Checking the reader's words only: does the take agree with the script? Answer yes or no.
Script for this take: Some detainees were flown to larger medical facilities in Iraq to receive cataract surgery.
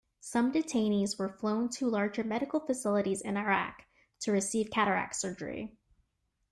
yes